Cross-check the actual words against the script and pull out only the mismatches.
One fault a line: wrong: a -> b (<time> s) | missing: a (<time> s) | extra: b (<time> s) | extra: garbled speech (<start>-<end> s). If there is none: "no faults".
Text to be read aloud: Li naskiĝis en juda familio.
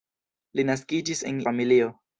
missing: juda (1.4 s)